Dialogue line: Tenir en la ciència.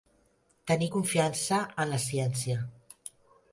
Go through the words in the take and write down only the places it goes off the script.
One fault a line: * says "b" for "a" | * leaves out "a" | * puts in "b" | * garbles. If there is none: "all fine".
* puts in "confiança"